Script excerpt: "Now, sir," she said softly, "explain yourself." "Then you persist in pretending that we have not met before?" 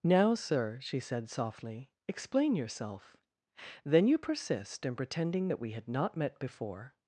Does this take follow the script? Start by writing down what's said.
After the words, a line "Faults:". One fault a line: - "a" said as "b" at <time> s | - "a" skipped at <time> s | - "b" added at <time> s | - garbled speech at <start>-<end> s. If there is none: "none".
"Now, sir," she said softly, "explain yourself." "Then you persist in pretending that we had not met before?"
Faults:
- "have" said as "had" at 5.7 s